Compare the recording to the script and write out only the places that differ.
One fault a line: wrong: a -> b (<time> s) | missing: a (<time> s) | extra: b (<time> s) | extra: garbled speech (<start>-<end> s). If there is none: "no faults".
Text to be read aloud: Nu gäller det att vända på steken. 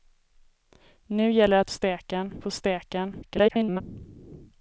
wrong: vända -> steken (1.7 s)
extra: garbled speech (3.2-3.8 s)